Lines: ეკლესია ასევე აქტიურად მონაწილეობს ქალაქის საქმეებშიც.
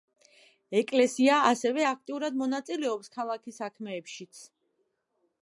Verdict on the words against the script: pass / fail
pass